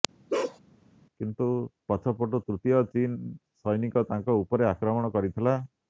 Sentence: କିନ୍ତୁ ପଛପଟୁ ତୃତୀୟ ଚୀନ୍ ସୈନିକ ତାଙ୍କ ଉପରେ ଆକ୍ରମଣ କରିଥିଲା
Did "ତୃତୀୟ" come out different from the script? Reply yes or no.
no